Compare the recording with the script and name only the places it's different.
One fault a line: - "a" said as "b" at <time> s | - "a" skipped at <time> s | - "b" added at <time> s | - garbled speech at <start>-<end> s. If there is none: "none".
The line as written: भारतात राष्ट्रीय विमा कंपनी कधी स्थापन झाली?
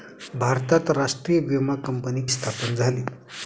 - "कधी" skipped at 2.2 s